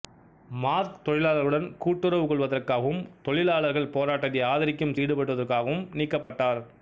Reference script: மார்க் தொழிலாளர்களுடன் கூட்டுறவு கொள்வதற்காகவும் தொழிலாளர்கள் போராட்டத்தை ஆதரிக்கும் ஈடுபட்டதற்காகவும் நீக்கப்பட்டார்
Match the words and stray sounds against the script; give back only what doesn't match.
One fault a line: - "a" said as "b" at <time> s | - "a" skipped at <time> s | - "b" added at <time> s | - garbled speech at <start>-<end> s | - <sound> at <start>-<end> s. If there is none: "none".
- dropout at 6.2-6.3 s